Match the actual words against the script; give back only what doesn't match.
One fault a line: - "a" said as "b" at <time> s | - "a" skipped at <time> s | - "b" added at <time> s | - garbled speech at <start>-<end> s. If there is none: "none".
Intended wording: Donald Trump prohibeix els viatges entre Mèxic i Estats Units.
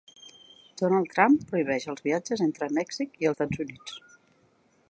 none